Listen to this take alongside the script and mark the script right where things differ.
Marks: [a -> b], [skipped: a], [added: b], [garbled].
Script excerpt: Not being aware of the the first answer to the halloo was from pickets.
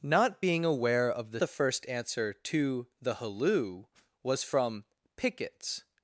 Not being aware of the the first answer to the halloo was from pickets.